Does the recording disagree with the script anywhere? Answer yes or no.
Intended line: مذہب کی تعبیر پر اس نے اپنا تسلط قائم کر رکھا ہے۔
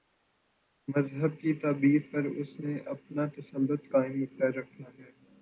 no